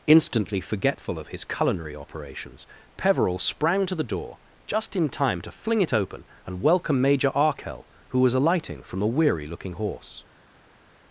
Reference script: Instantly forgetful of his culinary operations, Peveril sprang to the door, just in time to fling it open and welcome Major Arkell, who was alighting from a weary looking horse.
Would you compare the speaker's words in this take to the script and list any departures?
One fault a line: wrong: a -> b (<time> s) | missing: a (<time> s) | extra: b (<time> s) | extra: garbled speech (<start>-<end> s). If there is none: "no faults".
no faults